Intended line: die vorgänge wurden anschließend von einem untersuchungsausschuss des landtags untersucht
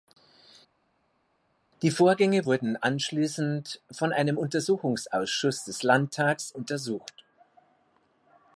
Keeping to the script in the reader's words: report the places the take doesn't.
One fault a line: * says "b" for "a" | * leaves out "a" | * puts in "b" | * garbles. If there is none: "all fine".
all fine